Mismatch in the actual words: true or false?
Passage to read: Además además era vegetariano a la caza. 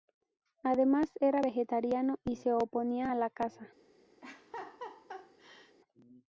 true